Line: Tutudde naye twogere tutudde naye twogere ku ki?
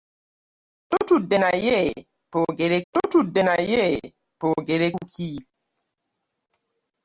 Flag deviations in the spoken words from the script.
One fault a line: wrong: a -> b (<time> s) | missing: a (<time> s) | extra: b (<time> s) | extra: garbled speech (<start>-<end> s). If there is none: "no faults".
no faults